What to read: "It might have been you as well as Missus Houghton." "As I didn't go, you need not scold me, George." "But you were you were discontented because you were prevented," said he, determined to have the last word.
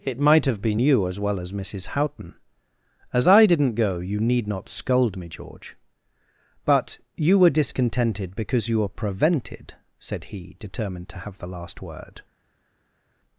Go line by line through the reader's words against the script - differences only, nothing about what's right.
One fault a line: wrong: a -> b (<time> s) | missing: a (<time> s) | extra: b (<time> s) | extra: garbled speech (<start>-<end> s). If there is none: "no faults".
missing: you were (7.5 s)